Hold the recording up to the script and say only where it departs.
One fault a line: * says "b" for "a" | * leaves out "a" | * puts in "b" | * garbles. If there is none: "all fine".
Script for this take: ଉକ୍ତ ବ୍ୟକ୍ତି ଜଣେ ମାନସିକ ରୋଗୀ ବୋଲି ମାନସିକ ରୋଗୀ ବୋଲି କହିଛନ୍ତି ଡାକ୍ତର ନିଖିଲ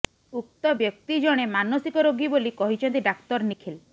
* leaves out "ମାନସିକ ରୋଗୀ ବୋଲି"